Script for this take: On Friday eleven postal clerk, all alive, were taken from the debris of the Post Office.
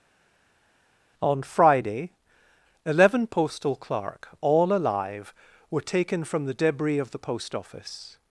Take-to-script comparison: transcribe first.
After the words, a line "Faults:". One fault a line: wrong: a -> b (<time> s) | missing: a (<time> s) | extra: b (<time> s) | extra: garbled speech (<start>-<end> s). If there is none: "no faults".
On Friday eleven postal clerk, all alive, were taken from the debris of the Post Office.
Faults:
no faults